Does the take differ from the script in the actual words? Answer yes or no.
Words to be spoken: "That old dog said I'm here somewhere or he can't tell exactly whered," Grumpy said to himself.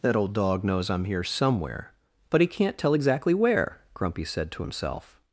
yes